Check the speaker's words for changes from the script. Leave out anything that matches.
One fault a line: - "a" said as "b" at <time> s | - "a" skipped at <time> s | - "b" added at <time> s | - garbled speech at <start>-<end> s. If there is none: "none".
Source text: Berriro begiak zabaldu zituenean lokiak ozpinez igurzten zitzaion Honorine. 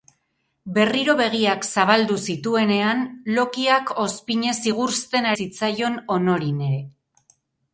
none